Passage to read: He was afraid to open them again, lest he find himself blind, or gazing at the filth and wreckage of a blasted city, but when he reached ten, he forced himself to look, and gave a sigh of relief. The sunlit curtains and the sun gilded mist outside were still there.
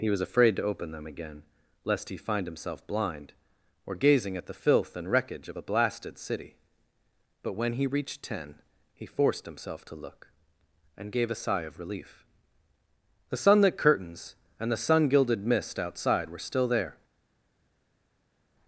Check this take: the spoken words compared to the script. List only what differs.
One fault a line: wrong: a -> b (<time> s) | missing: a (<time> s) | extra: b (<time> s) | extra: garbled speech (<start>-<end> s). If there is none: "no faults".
no faults